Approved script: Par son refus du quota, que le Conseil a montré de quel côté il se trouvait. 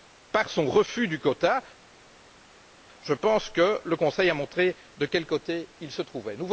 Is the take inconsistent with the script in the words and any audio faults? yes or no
yes